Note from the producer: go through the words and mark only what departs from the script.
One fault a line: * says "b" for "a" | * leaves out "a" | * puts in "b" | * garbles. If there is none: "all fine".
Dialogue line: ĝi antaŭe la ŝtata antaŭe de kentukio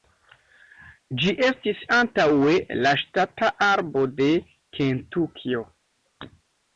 * puts in "estis"
* says "arbo" for "antaŭe"